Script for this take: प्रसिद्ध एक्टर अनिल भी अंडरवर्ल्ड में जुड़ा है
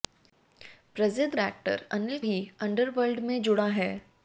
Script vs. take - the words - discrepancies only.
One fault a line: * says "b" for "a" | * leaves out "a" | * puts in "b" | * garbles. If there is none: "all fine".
all fine